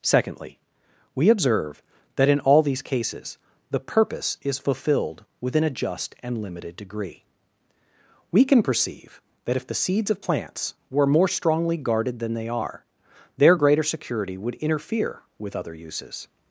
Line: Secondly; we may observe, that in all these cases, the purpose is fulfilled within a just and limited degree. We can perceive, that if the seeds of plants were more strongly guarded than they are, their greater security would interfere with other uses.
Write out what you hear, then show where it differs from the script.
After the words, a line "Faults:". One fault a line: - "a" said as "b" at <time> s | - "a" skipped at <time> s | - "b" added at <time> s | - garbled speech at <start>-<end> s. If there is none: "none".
Secondly; we observe, that in all these cases, the purpose is fulfilled within a just and limited degree. We can perceive, that if the seeds of plants were more strongly guarded than they are, their greater security would interfere with other uses.
Faults:
- "may" skipped at 1.3 s